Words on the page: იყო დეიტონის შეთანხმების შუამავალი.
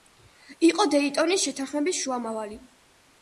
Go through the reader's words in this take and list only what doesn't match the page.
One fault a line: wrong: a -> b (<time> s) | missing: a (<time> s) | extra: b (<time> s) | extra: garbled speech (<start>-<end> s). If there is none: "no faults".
no faults